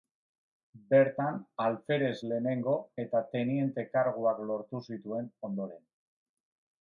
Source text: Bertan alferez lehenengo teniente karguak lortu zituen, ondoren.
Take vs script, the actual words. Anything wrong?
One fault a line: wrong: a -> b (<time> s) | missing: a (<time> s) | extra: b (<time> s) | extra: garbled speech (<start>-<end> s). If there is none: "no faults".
extra: eta (3.1 s)